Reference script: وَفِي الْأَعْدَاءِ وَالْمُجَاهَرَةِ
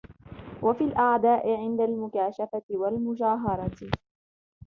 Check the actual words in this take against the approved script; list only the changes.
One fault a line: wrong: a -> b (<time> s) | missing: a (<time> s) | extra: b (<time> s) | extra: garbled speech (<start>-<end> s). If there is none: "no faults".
extra: عِنْدَ الْمُكَاشَفَةِ (1.6 s)